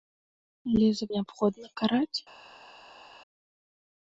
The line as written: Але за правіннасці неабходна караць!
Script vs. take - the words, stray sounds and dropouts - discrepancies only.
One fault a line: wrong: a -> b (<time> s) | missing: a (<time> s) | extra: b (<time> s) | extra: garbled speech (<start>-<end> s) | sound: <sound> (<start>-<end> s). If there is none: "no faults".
missing: правіннасці (1.1 s)